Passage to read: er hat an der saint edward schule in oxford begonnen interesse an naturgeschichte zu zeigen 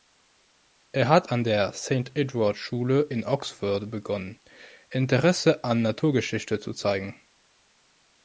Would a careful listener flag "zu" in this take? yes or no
no